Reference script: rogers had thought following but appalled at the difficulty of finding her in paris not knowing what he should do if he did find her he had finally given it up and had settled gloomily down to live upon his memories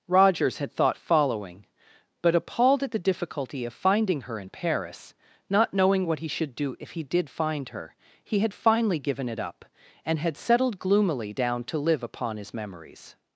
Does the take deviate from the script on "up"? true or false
false